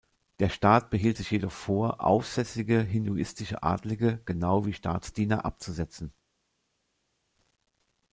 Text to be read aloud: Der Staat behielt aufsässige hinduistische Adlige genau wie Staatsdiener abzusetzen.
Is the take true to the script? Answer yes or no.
no